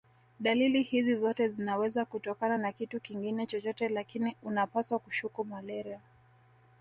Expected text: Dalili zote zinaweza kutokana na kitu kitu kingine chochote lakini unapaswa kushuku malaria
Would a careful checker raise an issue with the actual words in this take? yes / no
yes